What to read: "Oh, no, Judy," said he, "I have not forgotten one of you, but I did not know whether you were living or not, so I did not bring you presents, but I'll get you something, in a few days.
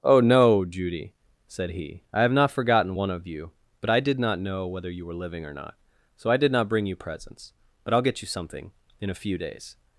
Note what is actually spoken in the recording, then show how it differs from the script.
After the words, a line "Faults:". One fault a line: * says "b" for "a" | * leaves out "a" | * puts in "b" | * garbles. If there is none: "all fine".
"Oh, no, Judy," said he, "I have not forgotten one of you, but I did not know whether you were living or not, so I did not bring you presents, but I'll get you something, in a few days.
Faults:
all fine